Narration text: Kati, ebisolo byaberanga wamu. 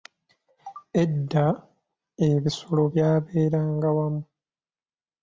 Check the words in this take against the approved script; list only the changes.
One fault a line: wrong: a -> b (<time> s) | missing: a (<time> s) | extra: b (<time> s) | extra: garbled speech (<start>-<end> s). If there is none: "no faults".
wrong: Kati -> Edda (1.0 s)